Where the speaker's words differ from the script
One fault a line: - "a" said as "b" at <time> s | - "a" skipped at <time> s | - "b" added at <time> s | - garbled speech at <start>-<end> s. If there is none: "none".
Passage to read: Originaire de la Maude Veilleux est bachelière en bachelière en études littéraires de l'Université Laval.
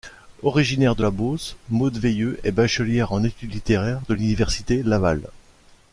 - "Beauce" added at 1.1 s
- "bachelière en" skipped at 3.2 s